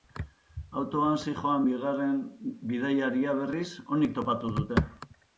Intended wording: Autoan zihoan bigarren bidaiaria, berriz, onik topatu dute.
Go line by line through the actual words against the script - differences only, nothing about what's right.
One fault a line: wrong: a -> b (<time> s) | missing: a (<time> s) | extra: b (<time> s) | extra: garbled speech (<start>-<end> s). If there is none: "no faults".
no faults